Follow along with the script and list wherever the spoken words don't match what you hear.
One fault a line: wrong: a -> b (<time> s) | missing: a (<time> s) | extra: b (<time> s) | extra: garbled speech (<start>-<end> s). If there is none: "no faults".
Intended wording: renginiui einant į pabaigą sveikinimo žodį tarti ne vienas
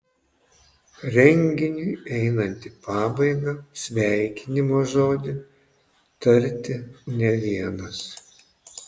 no faults